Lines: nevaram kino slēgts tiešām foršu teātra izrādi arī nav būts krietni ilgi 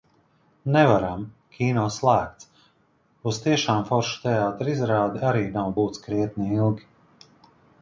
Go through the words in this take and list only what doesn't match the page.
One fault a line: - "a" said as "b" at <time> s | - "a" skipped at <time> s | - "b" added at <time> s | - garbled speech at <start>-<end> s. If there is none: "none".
- "uz" added at 3.3 s